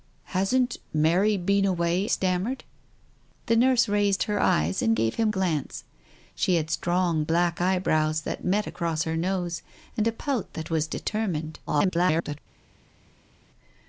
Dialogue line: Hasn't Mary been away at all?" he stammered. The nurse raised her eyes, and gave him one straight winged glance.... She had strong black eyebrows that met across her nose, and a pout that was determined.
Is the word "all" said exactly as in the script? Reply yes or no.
no